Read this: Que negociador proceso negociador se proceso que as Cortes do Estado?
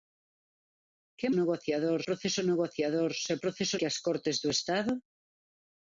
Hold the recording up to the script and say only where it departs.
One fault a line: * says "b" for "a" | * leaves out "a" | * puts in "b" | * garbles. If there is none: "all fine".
all fine